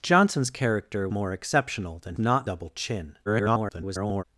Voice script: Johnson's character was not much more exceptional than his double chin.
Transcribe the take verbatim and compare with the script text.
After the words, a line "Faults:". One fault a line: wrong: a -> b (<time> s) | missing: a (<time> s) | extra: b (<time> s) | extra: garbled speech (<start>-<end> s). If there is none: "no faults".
Johnson's character more exceptional than not double chin. [garbled]
Faults:
missing: was not much (1.1 s)
wrong: his -> not (2.2 s)
extra: garbled speech (3.3-4.2 s)